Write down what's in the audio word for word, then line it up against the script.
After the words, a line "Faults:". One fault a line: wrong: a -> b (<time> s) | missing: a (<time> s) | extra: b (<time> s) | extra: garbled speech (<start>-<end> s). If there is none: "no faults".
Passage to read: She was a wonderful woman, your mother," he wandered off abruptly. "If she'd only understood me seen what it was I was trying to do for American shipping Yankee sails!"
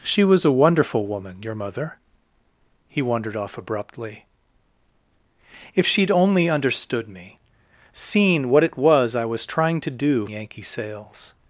She was a wonderful woman, your mother," he wandered off abruptly. "If she'd only understood me seen what it was I was trying to do Yankee sails!"
Faults:
missing: for American shipping (10.2 s)